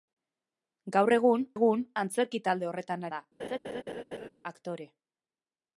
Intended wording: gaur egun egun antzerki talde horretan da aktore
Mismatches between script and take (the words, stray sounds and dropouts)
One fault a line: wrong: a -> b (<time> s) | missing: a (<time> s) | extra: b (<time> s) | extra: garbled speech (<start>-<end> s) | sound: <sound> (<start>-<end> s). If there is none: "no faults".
sound: laugh (3.4-4.3 s)